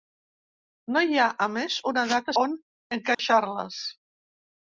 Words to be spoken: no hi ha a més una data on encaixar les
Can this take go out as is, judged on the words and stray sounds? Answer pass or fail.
fail